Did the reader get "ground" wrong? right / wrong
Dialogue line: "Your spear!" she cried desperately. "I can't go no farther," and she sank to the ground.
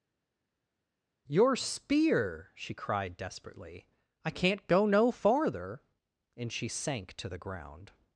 right